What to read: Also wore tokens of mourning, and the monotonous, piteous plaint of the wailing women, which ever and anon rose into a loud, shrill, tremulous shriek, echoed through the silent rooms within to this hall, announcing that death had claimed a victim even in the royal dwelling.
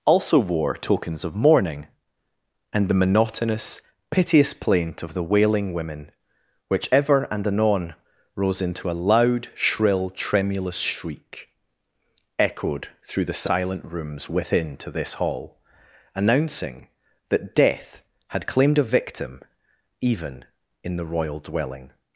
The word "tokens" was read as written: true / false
true